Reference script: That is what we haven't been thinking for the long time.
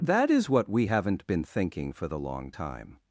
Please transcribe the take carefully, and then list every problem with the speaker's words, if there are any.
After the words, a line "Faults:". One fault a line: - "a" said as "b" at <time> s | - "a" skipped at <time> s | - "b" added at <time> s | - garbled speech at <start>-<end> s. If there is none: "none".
That is what we haven't been thinking for the long time.
Faults:
none